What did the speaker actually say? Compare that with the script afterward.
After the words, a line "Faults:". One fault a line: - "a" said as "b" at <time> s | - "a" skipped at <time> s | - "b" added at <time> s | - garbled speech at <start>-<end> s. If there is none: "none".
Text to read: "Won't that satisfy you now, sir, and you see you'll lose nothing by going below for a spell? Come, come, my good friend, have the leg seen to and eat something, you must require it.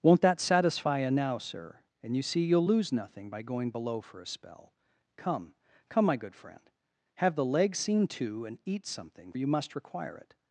"Won't that satisfy you now, sir, and you see you'll lose nothing by going below for a spell? Come, come, my good friend, have the leg seen to and eat something, you must require it.
Faults:
none